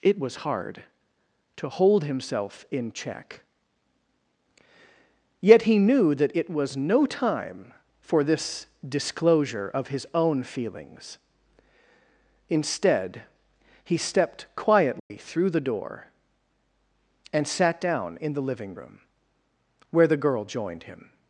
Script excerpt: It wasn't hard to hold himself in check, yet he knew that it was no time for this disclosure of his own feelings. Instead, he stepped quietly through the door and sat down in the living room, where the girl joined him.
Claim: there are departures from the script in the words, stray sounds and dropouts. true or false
true